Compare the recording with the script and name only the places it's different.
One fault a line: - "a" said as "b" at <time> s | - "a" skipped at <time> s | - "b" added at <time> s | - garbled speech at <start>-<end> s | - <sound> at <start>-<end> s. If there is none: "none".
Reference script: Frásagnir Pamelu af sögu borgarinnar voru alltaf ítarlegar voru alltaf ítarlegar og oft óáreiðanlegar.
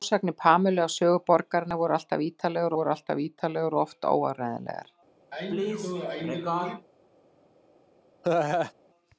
- sneeze at 5.3-6.9 s
- laugh at 8.2-8.7 s